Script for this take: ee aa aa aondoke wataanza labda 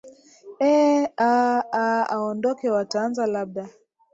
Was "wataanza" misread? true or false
false